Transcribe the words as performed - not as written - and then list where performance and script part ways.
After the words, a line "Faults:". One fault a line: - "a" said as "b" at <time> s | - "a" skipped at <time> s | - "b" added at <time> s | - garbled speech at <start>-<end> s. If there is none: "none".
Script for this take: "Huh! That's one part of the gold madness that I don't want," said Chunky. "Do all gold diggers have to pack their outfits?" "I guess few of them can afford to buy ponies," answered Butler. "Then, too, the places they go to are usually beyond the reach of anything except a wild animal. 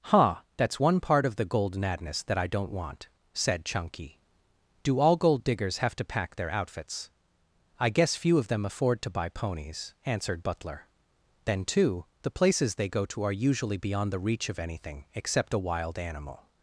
"Huh! That's one part of the gold madness that I don't want," said Chunky. "Do all gold diggers have to pack their outfits?" "I guess few of them afford to buy ponies," answered Butler. "Then, too, the places they go to are usually beyond the reach of anything except a wild animal.
Faults:
- "can" skipped at 8.6 s